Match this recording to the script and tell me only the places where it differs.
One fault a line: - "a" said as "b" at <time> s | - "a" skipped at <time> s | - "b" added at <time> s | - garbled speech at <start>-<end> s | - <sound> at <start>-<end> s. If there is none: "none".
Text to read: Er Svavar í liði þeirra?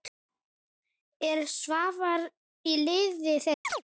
- chirp at 3.6-3.8 s